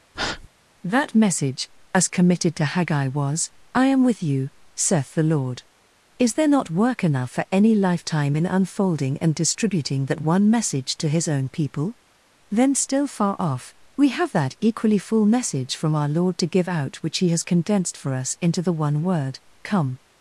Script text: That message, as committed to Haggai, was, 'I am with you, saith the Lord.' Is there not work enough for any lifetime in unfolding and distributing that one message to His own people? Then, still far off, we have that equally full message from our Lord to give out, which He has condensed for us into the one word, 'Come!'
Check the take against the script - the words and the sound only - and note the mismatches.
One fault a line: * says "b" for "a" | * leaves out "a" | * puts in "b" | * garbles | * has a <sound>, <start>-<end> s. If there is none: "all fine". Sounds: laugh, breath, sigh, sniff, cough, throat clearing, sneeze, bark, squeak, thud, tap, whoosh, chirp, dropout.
* has a breath, 0.1-0.5 s